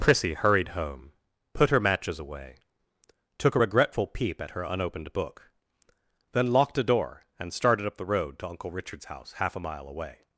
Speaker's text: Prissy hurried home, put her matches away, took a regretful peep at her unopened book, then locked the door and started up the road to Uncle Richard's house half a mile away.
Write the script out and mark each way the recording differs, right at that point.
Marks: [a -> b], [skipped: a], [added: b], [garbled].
Prissy hurried home, put her matches away, took a regretful peep at her unopened book, then locked [the -> a] door and started up the road to Uncle Richard's house half a mile away.